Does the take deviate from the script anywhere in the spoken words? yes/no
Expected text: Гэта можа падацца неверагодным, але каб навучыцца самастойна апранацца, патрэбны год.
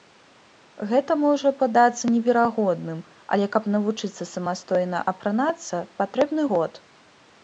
no